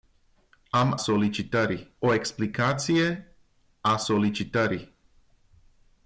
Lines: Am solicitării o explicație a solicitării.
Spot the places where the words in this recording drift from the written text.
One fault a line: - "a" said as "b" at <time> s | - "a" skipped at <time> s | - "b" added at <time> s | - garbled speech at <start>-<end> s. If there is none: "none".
none